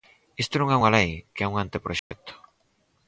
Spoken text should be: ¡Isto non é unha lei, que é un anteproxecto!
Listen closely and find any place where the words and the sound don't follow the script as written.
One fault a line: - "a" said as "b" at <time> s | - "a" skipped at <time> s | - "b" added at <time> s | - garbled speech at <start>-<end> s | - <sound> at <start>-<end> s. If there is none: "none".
- dropout at 2.0-2.1 s